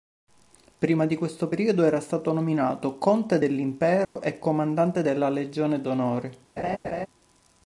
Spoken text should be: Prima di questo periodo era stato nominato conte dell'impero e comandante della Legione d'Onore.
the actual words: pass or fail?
pass